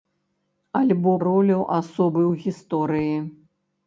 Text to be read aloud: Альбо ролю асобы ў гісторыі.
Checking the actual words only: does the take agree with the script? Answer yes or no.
yes